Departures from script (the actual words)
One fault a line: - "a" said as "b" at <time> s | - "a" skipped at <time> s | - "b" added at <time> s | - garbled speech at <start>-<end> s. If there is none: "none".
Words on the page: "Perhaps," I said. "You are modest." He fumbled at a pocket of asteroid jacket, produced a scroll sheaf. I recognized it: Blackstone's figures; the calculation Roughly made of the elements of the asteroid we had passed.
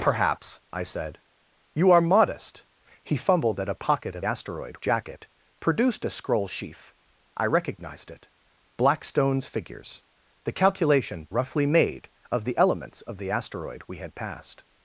none